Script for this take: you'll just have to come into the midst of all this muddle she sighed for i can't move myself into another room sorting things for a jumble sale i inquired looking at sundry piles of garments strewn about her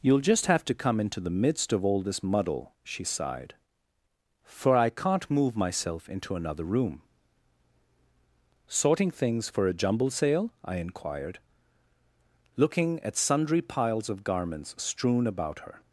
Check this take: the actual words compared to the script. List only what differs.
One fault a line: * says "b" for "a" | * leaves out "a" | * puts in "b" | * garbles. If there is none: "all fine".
all fine